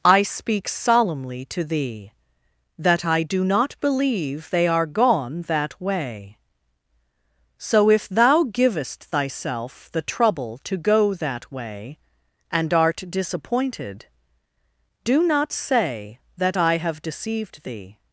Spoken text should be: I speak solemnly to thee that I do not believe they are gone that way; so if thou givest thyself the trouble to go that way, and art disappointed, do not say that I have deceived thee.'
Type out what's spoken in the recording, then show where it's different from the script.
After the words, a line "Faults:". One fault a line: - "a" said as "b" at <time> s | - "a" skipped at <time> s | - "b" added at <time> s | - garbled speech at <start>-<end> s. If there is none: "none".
I speak solemnly to thee that I do not believe they are gone that way; so if thou givest thyself the trouble to go that way, and art disappointed, do not say that I have deceived thee.'
Faults:
none